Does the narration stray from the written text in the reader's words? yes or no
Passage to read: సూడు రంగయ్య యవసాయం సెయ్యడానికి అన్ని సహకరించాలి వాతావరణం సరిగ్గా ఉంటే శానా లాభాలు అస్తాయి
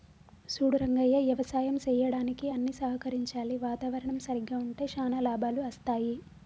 no